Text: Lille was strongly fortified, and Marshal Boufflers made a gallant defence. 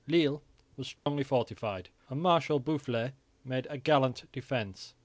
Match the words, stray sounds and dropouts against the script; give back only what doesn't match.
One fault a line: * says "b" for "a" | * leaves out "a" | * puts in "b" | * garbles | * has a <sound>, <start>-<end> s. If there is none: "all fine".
* has a dropout, 1.0-1.1 s